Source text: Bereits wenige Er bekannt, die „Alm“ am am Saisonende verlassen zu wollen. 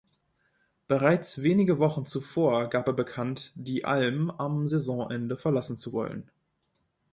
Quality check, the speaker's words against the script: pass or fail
fail